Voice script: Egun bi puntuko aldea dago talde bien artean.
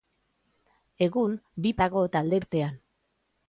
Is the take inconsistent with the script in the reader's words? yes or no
yes